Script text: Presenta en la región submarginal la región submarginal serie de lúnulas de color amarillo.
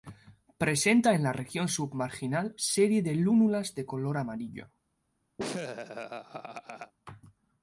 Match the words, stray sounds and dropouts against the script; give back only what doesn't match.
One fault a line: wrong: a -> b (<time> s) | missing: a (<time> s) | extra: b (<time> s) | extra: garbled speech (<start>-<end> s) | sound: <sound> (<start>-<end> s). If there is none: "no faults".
missing: la región submarginal (2.5 s)
sound: laugh (5.4-6.9 s)